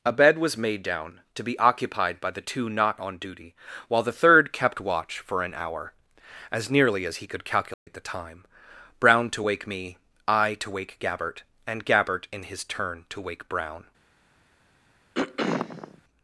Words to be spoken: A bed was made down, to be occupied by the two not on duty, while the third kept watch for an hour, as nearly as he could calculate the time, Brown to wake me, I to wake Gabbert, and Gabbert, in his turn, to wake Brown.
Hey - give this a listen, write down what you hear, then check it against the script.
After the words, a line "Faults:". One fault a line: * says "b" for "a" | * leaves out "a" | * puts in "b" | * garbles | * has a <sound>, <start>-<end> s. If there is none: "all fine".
A bed was made down, to be occupied by the two not on duty, while the third kept watch for an hour, as nearly as he could calculate the time, Brown to wake me, I to wake Gabbert, and Gabbert, in his turn, to wake Brown.
Faults:
* has a dropout, 7.7-7.9 s
* has a throat clearing, 15.1-16.0 s